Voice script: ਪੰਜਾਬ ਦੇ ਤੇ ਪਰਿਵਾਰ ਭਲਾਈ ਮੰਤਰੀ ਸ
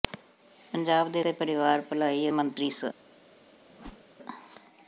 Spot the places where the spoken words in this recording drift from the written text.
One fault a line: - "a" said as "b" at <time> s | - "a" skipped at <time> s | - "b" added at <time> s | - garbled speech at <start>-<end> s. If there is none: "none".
none